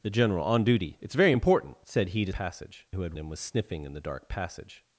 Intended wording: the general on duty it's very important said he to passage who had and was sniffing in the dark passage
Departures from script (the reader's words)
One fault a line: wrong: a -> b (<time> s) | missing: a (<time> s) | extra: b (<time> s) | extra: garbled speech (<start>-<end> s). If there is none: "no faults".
no faults